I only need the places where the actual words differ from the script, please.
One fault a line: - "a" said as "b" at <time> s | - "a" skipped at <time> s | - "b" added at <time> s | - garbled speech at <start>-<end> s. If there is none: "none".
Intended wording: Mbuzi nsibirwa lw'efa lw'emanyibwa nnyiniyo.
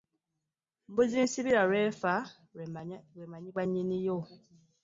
none